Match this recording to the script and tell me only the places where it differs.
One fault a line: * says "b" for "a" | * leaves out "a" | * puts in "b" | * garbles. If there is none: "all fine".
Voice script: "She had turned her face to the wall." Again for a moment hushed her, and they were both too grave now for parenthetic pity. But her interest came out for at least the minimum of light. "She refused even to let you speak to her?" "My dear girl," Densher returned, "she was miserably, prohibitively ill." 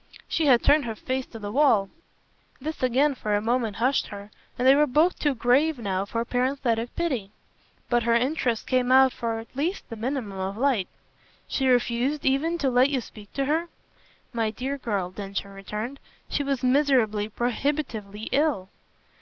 * puts in "This"